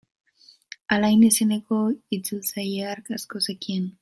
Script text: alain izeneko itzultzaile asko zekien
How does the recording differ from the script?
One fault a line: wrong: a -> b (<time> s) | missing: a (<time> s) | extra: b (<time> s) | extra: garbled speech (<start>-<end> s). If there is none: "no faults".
extra: hark (2.9 s)